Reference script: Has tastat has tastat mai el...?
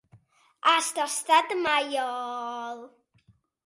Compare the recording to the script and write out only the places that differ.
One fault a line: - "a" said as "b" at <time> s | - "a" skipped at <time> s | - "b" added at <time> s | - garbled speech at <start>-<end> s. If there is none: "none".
- "has tastat" skipped at 1.5 s